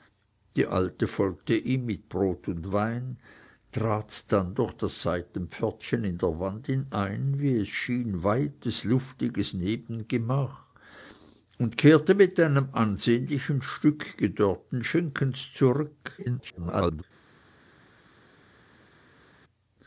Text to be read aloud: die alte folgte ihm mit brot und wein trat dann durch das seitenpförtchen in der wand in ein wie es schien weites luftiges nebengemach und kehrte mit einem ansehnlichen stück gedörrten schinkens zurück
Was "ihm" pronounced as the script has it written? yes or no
yes